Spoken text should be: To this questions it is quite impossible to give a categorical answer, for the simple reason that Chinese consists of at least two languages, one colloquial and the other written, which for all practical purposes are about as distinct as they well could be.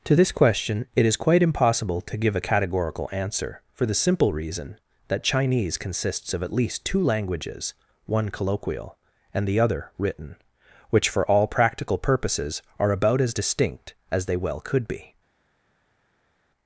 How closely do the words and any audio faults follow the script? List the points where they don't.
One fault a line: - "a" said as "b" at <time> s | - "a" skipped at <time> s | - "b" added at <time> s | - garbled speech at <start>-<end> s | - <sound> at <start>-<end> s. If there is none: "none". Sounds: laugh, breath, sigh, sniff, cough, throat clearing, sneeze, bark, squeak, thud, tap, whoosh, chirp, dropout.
- "questions" said as "question" at 0.3 s